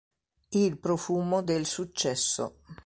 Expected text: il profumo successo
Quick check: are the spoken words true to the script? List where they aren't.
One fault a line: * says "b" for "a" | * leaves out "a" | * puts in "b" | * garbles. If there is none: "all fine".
* puts in "del"